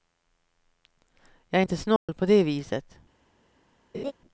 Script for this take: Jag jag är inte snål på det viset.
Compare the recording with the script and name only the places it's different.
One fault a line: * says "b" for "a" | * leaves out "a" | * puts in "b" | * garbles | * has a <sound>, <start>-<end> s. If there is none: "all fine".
* leaves out "jag"
* has a dropout, 2.0-2.1 s
* has a laugh, 3.9-4.1 s